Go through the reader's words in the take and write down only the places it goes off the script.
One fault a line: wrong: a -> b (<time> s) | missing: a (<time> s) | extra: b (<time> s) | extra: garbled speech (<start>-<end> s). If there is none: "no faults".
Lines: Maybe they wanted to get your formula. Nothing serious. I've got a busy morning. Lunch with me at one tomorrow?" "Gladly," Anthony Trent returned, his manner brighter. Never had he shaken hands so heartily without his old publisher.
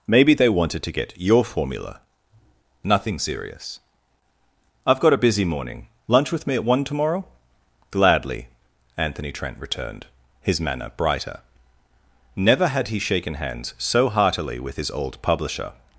wrong: without -> with (14.6 s)